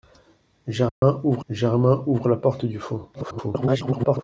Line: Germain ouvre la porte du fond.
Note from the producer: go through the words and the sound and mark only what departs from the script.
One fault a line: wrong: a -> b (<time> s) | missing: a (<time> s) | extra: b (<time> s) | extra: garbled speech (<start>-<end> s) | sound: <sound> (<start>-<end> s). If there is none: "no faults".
sound: dropout (0.9-1.0 s)
extra: germain ouvre (1.5 s)
extra: garbled speech (3.1-4.2 s)